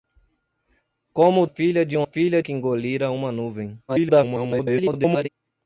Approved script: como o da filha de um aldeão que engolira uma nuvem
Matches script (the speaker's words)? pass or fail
fail